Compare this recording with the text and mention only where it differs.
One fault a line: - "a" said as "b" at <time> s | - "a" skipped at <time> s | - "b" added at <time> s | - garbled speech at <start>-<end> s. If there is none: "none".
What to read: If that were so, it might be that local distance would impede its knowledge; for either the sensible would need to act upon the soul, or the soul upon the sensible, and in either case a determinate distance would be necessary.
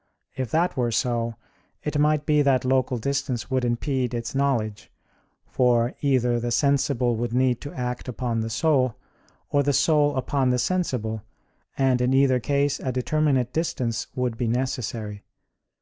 none